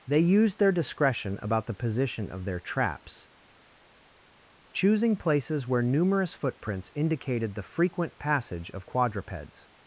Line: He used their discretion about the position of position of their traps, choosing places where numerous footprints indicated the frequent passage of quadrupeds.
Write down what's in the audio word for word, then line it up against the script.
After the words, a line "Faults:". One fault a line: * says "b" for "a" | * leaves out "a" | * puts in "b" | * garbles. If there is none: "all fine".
They used their discretion about the position of their traps, choosing places where numerous footprints indicated the frequent passage of quadrupeds.
Faults:
* says "They" for "He"
* leaves out "position of"